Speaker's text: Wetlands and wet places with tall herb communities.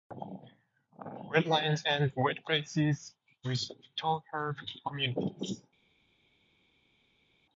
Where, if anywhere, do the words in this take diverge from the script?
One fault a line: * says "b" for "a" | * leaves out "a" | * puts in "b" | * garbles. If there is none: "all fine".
all fine